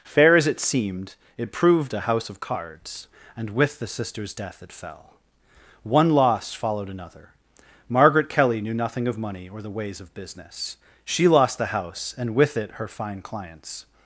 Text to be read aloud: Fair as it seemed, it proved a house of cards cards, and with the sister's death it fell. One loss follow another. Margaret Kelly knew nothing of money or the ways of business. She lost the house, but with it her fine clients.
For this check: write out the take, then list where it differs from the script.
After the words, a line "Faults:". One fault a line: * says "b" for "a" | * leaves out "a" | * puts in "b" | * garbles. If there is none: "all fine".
Fair as it seemed, it proved a house of cards, and with the sister's death it fell. One loss followed another. Margaret Kelly knew nothing of money or the ways of business. She lost the house, and with it her fine clients.
Faults:
* leaves out "cards"
* says "followed" for "follow"
* says "and" for "but"